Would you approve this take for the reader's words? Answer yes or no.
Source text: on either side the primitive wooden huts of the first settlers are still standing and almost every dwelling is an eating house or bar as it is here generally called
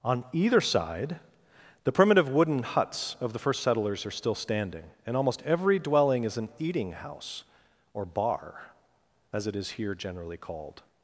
yes